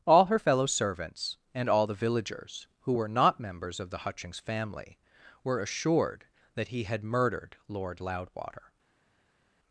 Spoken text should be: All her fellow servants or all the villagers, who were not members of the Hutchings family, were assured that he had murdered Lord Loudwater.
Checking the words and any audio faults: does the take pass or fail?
fail